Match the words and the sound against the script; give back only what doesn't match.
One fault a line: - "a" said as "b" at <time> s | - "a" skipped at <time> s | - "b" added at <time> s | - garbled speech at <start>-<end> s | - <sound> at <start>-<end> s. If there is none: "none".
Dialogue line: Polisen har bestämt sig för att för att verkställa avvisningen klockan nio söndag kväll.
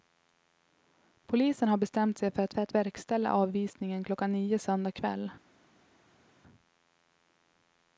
none